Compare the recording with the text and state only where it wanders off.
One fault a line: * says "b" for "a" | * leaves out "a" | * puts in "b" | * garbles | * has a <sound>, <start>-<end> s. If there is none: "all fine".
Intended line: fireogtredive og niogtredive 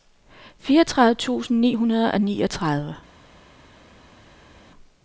* puts in "tusind ni hundrede"